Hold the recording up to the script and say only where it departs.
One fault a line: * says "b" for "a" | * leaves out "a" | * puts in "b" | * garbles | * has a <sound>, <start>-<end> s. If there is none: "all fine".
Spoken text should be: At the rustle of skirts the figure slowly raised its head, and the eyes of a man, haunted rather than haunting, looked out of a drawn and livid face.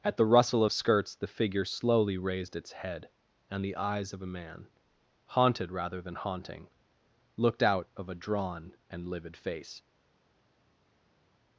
all fine